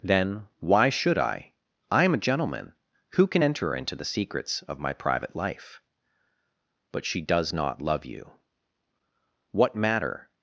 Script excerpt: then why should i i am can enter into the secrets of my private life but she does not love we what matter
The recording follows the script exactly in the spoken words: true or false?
false